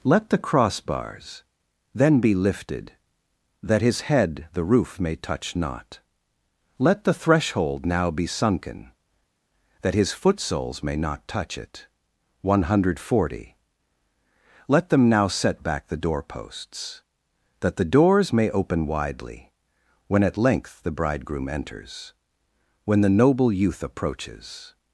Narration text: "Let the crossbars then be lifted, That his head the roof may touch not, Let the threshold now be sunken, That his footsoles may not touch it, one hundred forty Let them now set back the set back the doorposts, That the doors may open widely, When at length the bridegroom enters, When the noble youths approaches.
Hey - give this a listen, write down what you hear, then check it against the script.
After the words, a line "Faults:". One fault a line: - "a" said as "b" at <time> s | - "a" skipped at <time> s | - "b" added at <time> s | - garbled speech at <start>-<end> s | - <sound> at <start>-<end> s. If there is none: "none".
"Let the crossbars then be lifted, That his head the roof may touch not, Let the threshold now be sunken, That his footsoles may not touch it, one hundred forty Let them now set back the doorposts, That the doors may open widely, When at length the bridegroom enters, When the noble youth approaches.
Faults:
- "set back the" skipped at 16.0 s
- "youths" said as "youth" at 23.5 s